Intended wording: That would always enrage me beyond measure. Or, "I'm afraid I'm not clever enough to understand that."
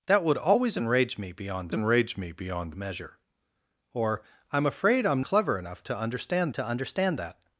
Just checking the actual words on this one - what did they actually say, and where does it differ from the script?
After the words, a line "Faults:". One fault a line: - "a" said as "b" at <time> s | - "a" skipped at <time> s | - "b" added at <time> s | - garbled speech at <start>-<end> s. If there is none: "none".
That would always enrage me beyond enrage me beyond measure. Or, "I'm afraid I'm clever enough to understand to understand that."
Faults:
- "enrage me beyond" added at 1.7 s
- "not" skipped at 5.2 s
- "to understand" added at 6.5 s